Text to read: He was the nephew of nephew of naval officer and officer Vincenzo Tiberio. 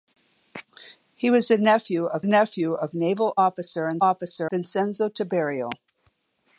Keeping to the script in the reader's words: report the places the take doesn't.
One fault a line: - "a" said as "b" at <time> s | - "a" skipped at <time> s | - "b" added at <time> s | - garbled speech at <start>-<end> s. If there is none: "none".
none